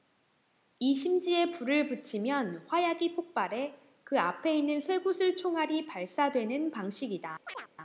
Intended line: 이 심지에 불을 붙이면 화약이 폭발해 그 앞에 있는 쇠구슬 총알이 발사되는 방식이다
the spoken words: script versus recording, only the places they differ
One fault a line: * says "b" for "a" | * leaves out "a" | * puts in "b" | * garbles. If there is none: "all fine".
all fine